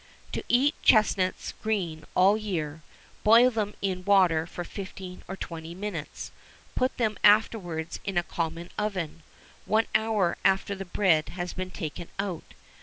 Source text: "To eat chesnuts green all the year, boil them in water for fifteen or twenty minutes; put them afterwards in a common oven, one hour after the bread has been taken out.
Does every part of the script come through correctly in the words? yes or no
yes